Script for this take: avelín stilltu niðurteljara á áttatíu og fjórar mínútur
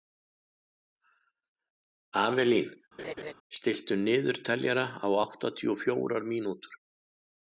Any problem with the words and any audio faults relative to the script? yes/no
yes